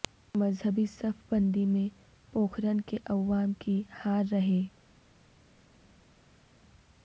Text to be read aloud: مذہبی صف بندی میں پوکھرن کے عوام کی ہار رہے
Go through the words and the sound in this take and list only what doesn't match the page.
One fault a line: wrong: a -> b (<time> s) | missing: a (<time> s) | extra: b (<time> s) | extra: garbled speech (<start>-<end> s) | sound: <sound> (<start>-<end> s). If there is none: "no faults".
no faults